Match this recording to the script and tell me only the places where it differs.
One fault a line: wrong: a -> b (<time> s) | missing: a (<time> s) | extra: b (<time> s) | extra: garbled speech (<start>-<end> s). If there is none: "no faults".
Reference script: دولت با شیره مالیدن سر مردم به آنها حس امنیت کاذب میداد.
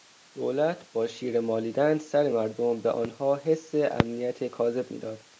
no faults